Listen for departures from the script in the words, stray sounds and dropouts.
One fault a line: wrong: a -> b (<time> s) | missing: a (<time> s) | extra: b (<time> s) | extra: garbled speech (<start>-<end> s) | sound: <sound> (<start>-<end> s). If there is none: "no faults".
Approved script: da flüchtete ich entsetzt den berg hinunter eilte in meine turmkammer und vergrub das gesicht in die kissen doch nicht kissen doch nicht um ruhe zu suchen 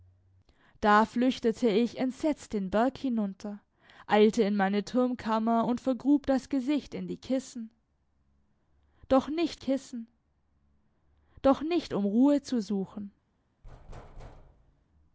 sound: thud (13.6-14.9 s)